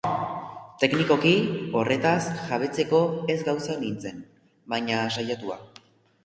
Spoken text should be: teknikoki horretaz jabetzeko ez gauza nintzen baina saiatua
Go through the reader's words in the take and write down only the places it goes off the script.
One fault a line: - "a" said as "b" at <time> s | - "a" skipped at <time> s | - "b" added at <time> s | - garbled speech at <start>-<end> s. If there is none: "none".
none